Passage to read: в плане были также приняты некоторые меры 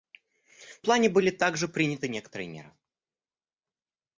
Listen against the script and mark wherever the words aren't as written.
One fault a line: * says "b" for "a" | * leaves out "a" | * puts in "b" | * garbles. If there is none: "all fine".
all fine